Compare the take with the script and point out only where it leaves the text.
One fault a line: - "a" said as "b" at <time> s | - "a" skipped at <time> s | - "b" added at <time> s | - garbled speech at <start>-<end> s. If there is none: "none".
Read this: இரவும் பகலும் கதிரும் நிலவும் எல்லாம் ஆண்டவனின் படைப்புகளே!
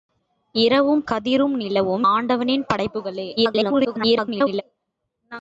- "பகலும்" skipped at 1.0 s
- "எல்லாம்" skipped at 2.0 s
- garbled speech at 3.4-4.6 s